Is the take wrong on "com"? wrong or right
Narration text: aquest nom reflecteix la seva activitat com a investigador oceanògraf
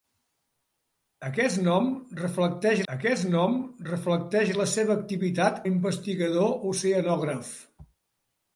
wrong